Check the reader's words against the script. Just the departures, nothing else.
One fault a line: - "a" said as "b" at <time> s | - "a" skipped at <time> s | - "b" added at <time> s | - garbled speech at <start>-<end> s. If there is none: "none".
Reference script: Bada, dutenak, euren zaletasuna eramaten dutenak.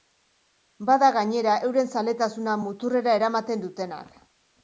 - "dutenak" said as "gainera" at 1.2 s
- "muturrera" added at 2.6 s